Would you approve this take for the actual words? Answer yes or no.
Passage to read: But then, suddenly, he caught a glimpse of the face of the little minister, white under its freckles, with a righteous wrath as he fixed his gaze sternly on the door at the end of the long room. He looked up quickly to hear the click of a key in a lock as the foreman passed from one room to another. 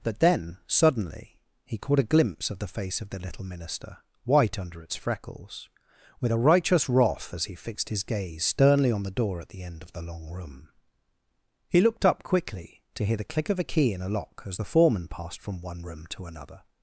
yes